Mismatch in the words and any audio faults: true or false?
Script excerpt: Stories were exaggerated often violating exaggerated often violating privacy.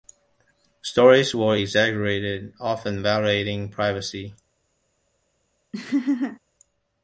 true